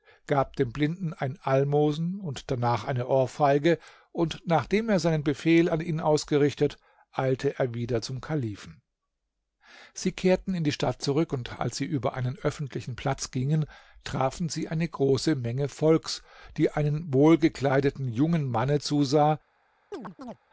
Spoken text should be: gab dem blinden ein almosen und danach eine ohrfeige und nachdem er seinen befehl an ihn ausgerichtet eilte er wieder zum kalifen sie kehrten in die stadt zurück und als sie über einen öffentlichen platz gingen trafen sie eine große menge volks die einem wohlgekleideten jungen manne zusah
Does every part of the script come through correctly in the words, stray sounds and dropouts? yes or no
no